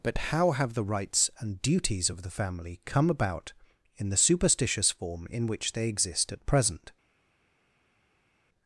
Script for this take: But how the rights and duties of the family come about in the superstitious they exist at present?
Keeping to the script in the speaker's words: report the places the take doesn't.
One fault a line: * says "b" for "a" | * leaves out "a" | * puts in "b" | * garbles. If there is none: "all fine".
* puts in "have"
* puts in "form in which"